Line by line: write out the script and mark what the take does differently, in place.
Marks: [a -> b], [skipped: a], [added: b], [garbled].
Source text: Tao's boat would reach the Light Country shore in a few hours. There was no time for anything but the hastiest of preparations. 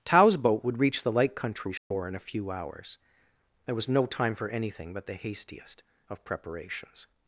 Tao's boat would reach the Light Country shore in a few hours. There was no time for anything but the hastiest of preparations.